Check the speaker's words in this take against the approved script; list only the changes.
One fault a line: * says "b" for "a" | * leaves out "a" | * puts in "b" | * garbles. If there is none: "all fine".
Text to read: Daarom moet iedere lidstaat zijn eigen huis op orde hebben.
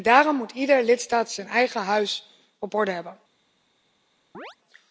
all fine